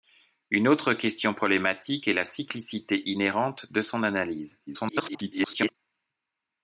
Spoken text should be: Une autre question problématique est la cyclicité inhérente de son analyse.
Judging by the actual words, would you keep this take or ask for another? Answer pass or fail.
fail